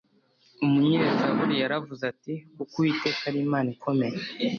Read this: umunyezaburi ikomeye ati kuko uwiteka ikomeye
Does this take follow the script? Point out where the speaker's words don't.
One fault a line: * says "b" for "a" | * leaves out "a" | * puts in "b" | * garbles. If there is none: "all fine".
* says "yaravuze" for "ikomeye"
* puts in "ari imana"